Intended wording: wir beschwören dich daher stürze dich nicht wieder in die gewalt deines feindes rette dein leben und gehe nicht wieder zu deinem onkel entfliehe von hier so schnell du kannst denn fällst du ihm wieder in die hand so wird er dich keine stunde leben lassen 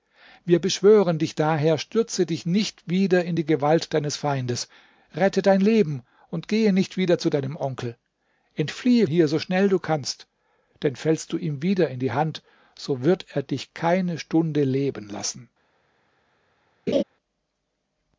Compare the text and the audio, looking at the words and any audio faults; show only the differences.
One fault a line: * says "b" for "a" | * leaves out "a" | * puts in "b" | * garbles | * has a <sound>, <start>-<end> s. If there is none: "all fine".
* leaves out "von"
* has a laugh, 16.9-17.0 s